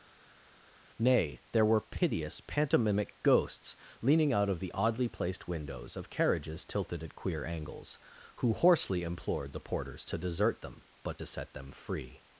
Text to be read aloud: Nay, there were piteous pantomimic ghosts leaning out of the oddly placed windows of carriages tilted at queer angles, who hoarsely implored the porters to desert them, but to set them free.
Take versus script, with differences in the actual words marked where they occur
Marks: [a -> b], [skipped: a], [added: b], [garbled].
Nay, there were piteous pantomimic ghosts leaning out of the oddly placed windows of carriages tilted at queer angles, who hoarsely implored the porters to desert them, but to set them free.